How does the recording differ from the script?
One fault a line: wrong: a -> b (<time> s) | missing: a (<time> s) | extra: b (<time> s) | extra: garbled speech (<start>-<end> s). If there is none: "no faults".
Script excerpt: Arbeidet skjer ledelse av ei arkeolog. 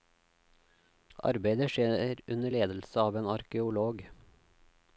extra: under (2.4 s)
wrong: ei -> en (3.2 s)